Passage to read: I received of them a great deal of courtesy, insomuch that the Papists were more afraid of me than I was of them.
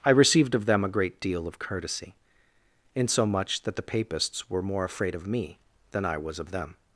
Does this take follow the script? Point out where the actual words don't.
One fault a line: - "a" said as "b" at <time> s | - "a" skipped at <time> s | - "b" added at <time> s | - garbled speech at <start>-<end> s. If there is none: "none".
none